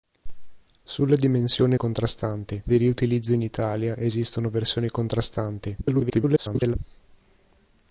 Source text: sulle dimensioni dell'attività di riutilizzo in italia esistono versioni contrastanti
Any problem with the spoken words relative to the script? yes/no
yes